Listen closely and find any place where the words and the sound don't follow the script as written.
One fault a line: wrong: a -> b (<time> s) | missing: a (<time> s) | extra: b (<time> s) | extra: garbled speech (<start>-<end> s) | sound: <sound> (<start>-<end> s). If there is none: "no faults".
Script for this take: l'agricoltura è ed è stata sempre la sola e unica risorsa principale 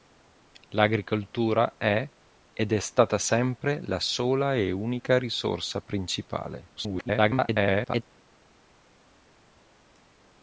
extra: garbled speech (6.8-8.0 s)